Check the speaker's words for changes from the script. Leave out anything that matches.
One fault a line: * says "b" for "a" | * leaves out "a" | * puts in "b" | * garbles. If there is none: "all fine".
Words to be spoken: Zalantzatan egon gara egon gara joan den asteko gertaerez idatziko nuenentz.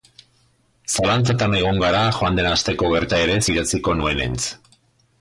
* leaves out "egon gara"